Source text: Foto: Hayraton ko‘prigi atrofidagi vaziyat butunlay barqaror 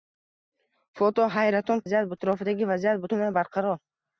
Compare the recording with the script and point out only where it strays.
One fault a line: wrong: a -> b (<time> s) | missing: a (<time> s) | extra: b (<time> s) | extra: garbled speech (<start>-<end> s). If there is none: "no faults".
wrong: ko‘prigi -> vaziyat (1.8 s)